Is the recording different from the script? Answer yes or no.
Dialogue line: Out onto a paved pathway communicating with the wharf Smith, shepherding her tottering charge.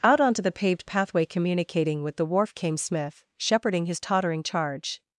yes